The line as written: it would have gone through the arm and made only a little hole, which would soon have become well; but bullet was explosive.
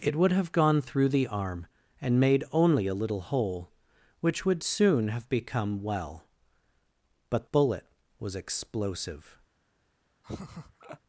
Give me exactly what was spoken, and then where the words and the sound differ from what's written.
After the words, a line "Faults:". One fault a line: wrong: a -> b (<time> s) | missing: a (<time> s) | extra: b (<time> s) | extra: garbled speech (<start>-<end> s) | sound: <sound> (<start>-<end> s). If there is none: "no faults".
it would have gone through the arm and made only a little hole, which would soon have become well; but bullet was explosive.
Faults:
sound: laugh (10.2-11.0 s)